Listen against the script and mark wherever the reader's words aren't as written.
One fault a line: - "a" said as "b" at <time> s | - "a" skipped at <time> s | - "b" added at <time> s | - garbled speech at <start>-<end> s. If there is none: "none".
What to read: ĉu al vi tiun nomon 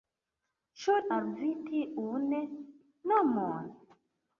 none